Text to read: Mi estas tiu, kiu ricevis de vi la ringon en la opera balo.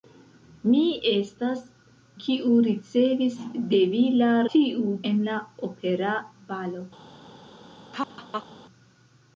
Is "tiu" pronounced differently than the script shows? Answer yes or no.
yes